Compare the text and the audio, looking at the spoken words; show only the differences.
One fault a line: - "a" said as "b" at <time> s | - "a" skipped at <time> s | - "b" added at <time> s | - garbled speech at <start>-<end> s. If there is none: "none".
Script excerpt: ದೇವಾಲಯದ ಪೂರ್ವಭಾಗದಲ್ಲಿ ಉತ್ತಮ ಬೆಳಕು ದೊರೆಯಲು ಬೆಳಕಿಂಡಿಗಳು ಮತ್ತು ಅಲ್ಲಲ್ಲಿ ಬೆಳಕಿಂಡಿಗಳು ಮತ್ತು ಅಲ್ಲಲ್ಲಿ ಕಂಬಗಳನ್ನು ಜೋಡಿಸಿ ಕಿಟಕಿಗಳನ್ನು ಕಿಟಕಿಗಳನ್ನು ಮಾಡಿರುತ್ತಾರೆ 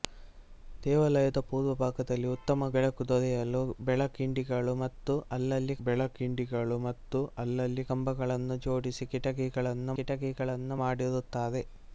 none